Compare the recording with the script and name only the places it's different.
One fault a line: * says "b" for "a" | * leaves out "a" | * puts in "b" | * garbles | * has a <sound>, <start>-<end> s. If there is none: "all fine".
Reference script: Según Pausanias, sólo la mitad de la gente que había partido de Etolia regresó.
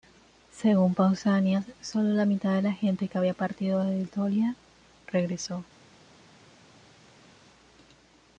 all fine